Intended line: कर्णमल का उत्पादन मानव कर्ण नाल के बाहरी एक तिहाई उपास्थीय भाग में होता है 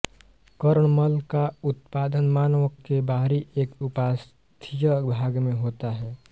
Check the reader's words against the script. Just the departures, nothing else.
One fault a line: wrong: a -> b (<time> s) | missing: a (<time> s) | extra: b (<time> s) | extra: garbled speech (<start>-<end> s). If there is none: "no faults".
missing: कर्ण नाल (2.7 s)
missing: तिहाई (3.7 s)